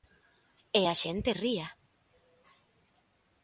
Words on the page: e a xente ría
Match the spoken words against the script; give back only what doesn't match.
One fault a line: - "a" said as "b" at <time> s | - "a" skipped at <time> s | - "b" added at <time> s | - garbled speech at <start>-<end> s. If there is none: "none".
none